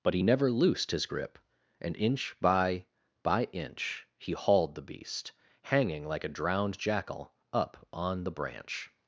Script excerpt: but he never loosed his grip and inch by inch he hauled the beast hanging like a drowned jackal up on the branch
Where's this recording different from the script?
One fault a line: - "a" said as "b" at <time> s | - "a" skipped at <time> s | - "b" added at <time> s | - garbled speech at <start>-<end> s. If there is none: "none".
- "by" added at 3.2 s